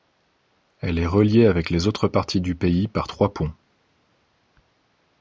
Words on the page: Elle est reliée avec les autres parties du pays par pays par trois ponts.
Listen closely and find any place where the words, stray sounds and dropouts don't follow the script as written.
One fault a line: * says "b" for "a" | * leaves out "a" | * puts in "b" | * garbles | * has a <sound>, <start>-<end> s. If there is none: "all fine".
* leaves out "pays par"